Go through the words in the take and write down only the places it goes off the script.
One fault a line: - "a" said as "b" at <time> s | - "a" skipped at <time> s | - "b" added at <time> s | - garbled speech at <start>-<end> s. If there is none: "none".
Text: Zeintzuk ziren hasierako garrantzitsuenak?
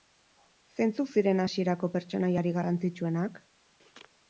- "pertsonaiarik" added at 2.0 s